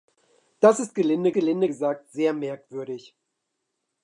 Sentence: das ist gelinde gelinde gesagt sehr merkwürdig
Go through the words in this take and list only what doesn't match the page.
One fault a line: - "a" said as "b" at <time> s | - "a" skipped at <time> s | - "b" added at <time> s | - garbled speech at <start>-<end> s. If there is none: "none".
none